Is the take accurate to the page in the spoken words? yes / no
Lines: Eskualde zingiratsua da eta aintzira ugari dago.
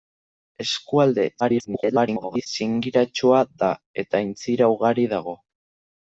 no